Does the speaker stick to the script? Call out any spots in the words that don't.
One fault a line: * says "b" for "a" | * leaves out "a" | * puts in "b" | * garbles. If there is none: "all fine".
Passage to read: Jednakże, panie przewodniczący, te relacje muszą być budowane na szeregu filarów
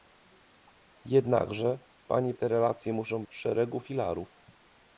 * leaves out "przewodniczący"
* leaves out "być budowane na"